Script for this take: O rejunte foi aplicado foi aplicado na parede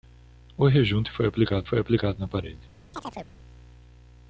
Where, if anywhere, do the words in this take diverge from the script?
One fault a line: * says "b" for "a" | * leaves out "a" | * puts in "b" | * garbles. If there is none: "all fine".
all fine